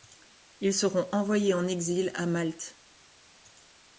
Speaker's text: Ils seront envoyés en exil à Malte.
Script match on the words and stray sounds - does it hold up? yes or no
yes